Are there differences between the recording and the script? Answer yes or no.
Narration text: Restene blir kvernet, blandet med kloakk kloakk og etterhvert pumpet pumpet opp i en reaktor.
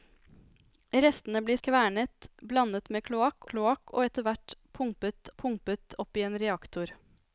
no